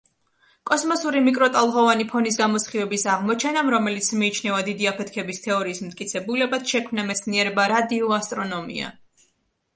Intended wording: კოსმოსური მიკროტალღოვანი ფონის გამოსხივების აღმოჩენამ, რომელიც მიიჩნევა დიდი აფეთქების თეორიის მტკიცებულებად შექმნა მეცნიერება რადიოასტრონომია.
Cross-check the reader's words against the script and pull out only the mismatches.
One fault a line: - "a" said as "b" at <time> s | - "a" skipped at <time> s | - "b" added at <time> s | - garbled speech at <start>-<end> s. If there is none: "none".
none